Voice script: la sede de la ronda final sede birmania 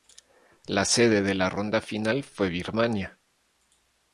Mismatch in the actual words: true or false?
true